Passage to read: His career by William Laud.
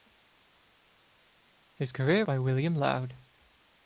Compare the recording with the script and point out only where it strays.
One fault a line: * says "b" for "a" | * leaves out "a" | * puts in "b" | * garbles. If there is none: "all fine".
all fine